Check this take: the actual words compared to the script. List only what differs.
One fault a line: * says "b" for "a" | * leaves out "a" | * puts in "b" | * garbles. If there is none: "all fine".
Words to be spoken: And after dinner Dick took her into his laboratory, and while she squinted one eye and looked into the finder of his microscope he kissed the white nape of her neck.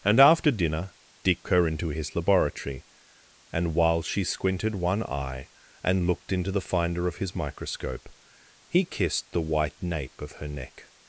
* leaves out "took"